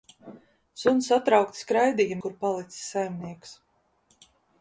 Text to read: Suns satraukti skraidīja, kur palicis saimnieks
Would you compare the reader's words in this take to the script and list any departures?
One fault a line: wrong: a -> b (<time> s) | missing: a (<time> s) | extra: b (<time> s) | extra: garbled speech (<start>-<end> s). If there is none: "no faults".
no faults